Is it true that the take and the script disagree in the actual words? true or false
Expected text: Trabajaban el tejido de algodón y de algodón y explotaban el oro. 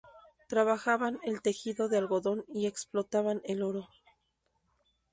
true